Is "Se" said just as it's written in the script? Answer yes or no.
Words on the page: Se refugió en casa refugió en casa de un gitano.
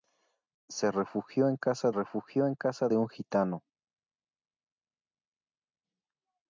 yes